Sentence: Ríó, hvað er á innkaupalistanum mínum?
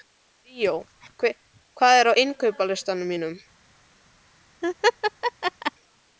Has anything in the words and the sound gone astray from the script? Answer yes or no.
yes